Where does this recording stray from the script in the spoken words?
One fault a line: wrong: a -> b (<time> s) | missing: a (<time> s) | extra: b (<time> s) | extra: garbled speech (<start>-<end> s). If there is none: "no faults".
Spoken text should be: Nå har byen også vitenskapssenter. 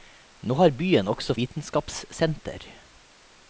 no faults